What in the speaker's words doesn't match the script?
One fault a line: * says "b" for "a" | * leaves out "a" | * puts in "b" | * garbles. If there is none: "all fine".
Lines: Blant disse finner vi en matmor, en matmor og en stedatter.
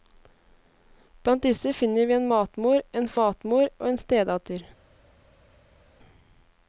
all fine